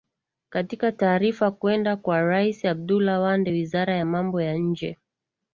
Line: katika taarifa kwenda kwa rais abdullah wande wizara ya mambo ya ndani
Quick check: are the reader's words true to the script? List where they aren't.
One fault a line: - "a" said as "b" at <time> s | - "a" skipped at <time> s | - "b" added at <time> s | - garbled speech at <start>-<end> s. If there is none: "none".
- "ndani" said as "nje" at 4.5 s